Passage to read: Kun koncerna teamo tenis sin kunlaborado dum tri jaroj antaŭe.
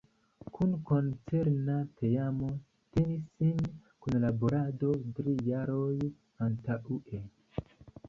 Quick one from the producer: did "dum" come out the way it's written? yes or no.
no